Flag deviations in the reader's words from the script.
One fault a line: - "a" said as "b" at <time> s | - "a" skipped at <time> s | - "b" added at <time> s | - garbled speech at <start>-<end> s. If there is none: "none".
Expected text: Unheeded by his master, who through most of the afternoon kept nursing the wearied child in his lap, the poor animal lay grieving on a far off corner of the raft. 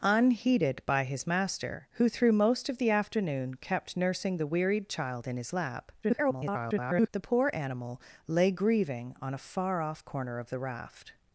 - garbled speech at 6.0-7.1 s